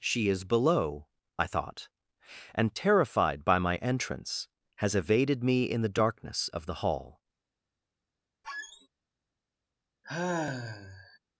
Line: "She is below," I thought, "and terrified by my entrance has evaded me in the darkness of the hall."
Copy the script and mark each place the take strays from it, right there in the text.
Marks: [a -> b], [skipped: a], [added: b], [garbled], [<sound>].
"She is below," I thought, "and terrified by my entrance has evaded me in the darkness of the hall." [squeak] [sigh]